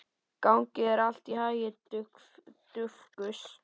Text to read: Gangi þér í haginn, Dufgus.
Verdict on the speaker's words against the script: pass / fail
fail